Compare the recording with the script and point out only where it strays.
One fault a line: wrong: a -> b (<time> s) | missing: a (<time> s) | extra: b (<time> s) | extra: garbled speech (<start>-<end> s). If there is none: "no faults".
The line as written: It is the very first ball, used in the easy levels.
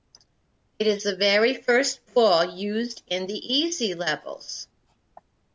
no faults